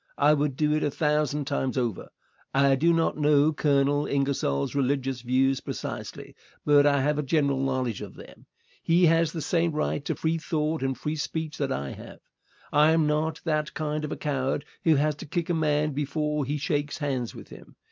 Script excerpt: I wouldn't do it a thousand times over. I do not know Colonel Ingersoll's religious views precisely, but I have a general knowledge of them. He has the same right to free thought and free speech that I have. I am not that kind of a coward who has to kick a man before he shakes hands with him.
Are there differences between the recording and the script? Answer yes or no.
yes